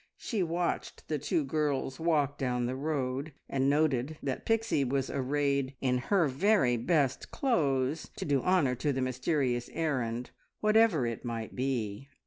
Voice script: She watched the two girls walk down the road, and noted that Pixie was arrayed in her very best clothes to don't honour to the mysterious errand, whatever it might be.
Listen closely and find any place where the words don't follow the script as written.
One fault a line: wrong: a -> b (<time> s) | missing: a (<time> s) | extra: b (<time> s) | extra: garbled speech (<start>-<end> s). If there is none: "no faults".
wrong: don't -> do (8.2 s)